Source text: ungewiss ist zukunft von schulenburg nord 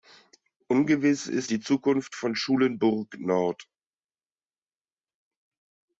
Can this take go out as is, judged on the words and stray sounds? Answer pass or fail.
fail